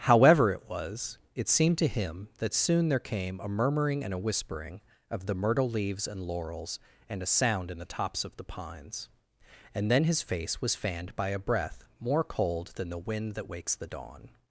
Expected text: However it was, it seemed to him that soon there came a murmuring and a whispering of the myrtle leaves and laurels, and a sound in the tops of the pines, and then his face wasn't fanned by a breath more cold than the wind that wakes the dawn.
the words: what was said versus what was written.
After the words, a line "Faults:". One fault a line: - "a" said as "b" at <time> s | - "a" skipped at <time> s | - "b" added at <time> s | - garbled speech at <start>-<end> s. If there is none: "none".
However it was, it seemed to him that soon there came a murmuring and a whispering of the myrtle leaves and laurels, and a sound in the tops of the pines, and then his face was fanned by a breath more cold than the wind that wakes the dawn.
Faults:
- "wasn't" said as "was" at 10.6 s